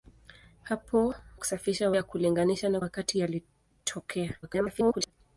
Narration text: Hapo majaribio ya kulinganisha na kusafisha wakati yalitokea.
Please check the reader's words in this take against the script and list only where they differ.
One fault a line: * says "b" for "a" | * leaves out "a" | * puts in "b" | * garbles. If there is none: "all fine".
* says "kusafisha" for "majaribio"
* leaves out "kusafisha"
* garbles